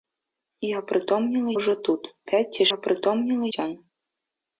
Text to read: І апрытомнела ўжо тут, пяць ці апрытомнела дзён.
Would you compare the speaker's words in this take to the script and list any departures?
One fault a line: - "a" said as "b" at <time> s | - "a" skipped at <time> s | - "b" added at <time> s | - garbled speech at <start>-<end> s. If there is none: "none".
none